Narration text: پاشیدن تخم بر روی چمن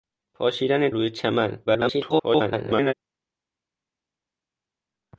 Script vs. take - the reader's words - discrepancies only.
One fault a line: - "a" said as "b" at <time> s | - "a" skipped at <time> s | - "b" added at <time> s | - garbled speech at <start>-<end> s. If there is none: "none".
- "تخم بر" skipped at 0.9 s
- garbled speech at 1.7-2.9 s